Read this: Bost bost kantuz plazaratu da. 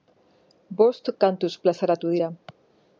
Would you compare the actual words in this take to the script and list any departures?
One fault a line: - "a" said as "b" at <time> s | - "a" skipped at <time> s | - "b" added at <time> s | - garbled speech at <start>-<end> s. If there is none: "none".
- "bost" skipped at 1.1 s
- "da" said as "dira" at 2.2 s